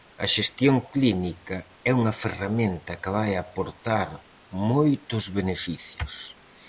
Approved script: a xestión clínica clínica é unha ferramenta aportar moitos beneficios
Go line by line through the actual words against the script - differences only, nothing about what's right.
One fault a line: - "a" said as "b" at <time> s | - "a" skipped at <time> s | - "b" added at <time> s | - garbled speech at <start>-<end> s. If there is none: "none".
- "clínica" skipped at 1.6 s
- "que vai" added at 3.0 s